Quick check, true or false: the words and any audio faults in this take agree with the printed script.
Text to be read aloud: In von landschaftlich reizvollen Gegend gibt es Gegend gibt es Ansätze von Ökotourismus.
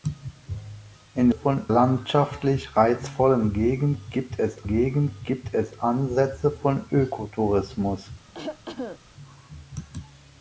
false